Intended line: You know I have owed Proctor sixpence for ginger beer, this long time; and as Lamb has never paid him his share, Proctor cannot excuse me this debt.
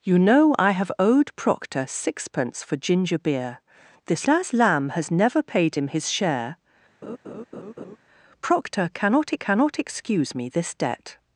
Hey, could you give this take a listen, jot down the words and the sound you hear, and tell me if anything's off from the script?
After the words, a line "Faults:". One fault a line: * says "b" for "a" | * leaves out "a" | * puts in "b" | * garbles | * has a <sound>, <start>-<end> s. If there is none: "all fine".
You know I have owed Proctor sixpence for ginger beer, this as Lamb has never paid him his share, Proctor cannot cannot excuse me this debt.
Faults:
* leaves out "long time and"
* has a laugh, 7.0-8.0 s
* puts in "cannot"